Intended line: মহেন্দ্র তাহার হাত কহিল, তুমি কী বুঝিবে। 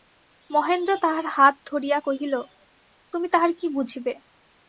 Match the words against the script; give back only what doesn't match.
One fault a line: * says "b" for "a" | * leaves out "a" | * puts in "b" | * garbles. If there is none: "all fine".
* puts in "ধরিয়া"
* puts in "তাহার"